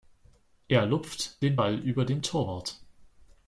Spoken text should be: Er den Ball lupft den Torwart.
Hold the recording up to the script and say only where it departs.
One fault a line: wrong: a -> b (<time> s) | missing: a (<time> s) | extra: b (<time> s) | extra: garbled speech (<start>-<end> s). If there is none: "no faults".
extra: lupft (0.9 s)
wrong: lupft -> über (1.8 s)